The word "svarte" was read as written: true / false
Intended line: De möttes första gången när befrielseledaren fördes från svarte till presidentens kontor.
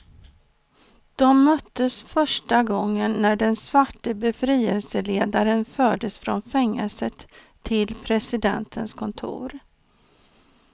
false